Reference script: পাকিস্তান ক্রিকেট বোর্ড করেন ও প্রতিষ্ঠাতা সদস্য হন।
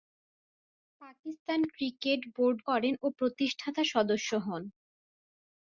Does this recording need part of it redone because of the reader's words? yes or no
no